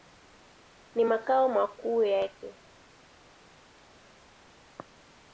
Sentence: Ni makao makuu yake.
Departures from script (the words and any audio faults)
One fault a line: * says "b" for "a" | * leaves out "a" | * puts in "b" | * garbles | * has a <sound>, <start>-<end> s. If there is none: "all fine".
all fine